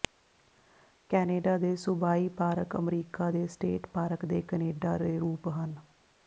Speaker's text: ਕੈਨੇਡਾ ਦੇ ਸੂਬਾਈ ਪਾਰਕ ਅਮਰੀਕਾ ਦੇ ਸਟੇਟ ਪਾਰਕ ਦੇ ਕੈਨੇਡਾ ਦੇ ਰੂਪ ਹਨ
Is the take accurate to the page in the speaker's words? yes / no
yes